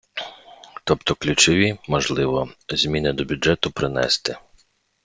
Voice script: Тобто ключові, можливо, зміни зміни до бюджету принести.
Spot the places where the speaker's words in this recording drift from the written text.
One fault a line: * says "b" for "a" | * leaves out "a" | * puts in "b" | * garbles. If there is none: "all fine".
* leaves out "зміни"